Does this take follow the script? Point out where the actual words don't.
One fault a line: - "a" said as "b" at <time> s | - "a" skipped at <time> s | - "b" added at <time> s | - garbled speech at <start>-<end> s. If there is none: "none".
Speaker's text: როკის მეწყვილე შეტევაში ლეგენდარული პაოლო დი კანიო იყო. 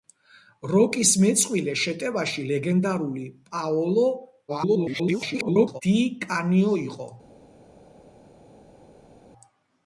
- garbled speech at 4.5-5.8 s